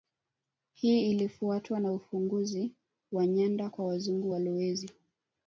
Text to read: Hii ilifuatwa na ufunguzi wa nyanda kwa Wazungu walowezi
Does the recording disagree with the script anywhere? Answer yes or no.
no